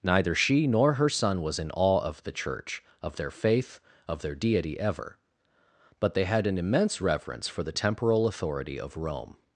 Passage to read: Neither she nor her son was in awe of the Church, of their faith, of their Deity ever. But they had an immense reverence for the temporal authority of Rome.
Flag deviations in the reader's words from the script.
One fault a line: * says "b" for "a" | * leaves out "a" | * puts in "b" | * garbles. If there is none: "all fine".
all fine